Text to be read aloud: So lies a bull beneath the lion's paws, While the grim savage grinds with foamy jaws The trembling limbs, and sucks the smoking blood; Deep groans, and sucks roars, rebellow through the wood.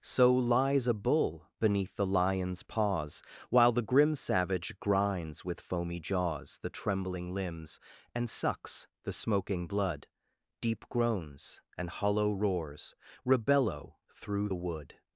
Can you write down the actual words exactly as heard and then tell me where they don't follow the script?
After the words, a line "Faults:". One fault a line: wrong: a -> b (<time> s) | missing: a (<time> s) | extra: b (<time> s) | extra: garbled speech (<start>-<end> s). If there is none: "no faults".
So lies a bull beneath the lion's paws, While the grim savage grinds with foamy jaws The trembling limbs, and sucks the smoking blood; Deep groans, and hollow roars, rebellow through the wood.
Faults:
wrong: sucks -> hollow (11.9 s)